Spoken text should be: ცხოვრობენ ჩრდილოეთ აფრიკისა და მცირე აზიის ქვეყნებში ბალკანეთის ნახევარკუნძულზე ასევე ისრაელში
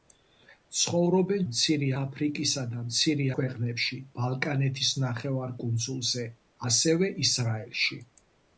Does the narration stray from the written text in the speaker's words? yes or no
yes